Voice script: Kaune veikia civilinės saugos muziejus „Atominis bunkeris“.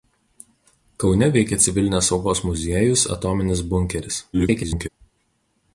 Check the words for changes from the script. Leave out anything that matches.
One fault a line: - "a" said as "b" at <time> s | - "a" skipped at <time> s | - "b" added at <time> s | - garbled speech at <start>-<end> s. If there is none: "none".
- garbled speech at 4.3-4.9 s